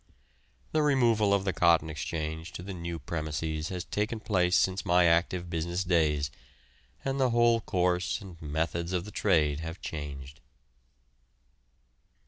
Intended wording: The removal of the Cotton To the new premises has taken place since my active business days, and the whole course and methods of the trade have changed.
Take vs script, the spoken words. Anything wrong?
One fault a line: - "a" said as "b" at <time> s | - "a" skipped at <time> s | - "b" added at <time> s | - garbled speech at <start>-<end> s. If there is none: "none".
- "Exchange" added at 1.9 s